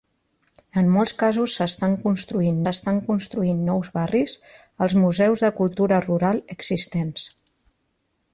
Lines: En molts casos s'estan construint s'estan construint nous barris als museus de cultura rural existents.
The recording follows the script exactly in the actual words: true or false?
true